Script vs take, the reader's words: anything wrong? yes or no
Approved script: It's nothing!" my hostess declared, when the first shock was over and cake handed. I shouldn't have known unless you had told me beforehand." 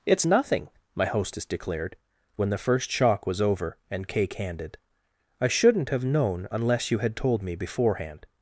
no